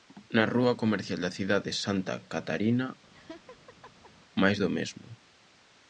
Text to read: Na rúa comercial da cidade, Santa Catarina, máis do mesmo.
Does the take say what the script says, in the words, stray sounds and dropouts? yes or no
no